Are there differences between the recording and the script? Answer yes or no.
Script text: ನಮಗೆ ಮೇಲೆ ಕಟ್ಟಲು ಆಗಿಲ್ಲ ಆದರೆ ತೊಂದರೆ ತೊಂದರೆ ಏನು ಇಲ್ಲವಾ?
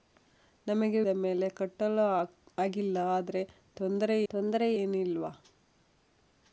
no